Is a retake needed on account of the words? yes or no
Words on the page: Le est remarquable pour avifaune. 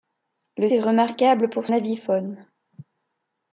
no